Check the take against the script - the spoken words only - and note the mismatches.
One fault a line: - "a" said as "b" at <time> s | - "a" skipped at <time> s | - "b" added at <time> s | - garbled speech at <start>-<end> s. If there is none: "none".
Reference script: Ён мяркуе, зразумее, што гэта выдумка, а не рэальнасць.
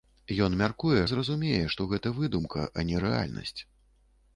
none